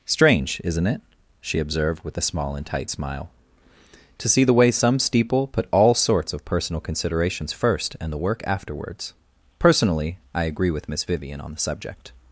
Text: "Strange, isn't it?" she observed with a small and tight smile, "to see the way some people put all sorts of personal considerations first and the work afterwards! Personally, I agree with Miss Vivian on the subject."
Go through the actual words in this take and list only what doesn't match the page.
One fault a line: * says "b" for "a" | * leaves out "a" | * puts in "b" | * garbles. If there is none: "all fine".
* says "steeple" for "people"